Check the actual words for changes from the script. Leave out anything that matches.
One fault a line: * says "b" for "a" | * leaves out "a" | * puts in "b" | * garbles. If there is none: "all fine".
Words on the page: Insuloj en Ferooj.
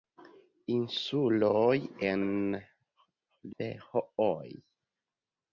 all fine